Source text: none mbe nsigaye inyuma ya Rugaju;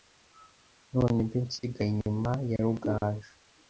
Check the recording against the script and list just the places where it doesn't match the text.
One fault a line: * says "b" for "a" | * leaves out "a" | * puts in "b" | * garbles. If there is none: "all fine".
all fine